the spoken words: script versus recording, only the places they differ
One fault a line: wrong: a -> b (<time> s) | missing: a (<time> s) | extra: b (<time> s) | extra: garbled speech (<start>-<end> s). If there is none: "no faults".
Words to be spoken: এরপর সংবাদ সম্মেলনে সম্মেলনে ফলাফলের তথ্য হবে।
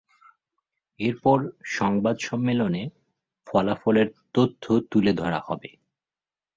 missing: সম্মেলনে (2.8 s)
extra: তুলে ধরা (4.9 s)